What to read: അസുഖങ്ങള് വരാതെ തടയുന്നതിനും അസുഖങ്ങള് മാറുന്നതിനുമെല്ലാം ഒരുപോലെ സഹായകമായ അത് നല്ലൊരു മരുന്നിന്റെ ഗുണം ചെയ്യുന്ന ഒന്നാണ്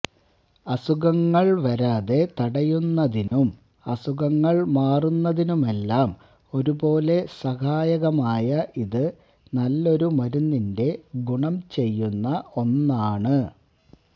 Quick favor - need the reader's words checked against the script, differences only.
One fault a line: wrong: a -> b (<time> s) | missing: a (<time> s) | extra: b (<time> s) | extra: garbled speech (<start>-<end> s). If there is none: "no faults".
wrong: അത് -> ഇത് (8.9 s)